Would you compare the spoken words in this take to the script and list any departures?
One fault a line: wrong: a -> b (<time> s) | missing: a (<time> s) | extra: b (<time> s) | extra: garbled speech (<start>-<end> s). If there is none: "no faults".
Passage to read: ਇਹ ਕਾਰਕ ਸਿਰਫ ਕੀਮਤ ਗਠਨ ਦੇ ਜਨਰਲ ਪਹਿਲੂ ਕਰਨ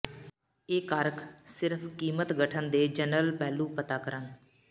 extra: ਪਤਾ (3.8 s)